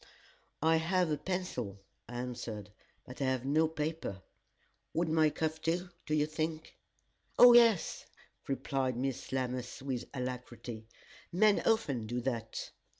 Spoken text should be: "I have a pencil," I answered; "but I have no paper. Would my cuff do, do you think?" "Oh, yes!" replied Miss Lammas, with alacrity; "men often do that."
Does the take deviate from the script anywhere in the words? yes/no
no